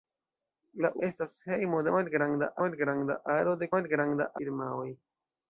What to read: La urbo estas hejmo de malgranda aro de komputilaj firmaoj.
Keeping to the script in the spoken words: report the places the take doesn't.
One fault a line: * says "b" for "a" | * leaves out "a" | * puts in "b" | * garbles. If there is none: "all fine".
* leaves out "urbo"
* puts in "malgranda"
* says "malgranda" for "komputilaj"